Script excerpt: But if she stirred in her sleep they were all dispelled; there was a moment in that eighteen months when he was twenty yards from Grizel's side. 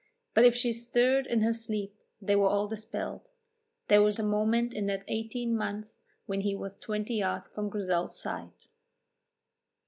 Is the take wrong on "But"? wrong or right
right